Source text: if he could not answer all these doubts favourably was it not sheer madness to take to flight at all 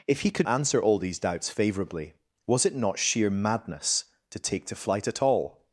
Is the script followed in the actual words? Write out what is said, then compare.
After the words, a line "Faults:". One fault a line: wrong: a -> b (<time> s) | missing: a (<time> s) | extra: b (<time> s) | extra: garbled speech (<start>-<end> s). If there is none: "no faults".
if he could answer all these doubts favourably was it not sheer madness to take to flight at all
Faults:
missing: not (0.5 s)